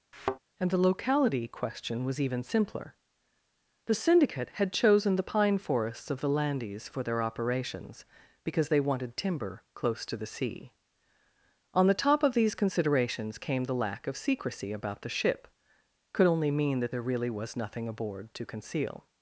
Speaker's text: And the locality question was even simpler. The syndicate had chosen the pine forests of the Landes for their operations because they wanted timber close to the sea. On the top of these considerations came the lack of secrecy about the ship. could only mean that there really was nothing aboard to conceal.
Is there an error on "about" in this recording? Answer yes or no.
no